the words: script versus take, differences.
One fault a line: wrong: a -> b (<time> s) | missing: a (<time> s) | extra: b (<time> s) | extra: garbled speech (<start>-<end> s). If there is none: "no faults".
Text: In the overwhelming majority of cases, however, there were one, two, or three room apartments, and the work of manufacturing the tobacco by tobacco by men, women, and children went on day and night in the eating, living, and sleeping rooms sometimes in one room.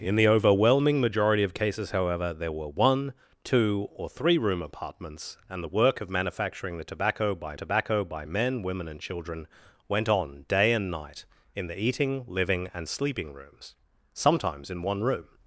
no faults